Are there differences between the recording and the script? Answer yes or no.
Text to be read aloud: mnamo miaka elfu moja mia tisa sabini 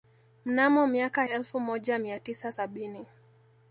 no